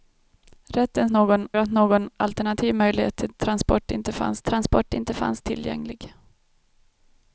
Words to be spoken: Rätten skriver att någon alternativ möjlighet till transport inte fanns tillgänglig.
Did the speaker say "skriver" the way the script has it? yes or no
no